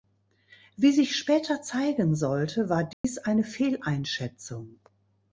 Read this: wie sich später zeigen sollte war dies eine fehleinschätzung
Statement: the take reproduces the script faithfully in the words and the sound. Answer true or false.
false